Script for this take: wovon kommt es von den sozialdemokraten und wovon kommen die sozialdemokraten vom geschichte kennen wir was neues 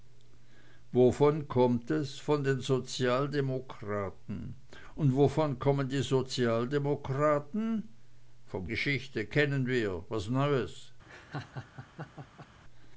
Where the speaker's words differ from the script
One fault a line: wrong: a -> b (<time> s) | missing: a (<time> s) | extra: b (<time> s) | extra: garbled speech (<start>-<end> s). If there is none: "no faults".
no faults